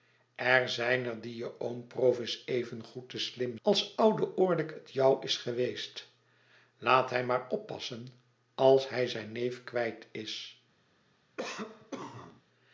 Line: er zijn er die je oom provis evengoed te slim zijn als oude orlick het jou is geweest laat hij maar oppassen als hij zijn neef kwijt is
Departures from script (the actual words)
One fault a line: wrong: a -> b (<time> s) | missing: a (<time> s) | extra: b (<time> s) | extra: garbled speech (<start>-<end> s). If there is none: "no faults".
missing: zijn (3.6 s)